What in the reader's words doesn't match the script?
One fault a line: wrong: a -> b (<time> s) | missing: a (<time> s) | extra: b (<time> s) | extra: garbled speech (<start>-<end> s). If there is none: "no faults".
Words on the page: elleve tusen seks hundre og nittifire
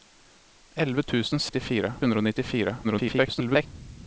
wrong: seks -> nittifire (1.5 s)
extra: garbled speech (2.8-3.7 s)